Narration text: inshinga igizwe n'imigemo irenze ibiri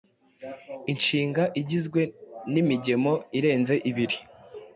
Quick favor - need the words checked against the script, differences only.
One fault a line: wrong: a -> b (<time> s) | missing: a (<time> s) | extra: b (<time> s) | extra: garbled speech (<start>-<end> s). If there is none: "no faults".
no faults